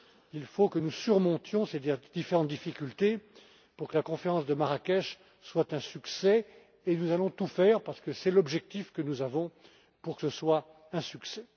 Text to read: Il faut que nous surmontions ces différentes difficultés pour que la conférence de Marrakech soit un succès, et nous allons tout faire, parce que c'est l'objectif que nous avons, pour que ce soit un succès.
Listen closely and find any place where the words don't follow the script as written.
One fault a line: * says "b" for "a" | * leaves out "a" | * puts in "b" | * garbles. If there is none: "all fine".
all fine